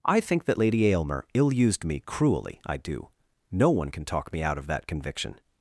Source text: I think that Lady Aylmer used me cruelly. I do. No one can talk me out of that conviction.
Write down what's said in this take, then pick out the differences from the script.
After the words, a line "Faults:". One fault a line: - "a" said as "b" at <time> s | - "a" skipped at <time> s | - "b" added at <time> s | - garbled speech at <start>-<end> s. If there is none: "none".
I think that Lady Aylmer ill used me cruelly. I do. No one can talk me out of that conviction.
Faults:
- "ill" added at 1.3 s